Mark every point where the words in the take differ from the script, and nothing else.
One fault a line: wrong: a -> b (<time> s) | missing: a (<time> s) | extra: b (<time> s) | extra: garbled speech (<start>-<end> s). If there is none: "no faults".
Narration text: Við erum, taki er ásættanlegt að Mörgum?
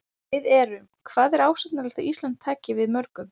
wrong: taki -> hvað (1.1 s)
extra: Ísland taki við (2.1 s)